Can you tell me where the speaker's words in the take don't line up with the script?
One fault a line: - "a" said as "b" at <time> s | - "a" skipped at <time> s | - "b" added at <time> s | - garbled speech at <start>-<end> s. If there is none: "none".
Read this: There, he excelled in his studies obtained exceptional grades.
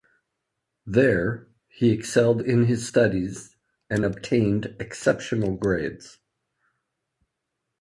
- "and" added at 3.9 s